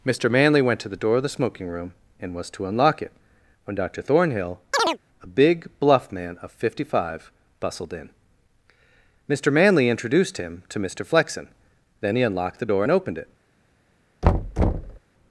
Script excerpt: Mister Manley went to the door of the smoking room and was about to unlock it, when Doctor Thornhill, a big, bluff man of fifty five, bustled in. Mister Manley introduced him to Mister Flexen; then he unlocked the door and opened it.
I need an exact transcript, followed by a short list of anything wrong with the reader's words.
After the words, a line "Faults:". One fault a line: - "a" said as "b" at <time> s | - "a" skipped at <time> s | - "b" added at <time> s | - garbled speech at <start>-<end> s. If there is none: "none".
Mister Manley went to the door of the smoking room and was to unlock it, when Doctor Thornhill, a big, bluff man of fifty five, bustled in. Mister Manley introduced him to Mister Flexen; then he unlocked the door and opened it.
Faults:
- "about" skipped at 2.5 s